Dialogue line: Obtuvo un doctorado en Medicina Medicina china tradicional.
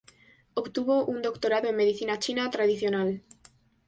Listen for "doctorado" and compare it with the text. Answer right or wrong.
right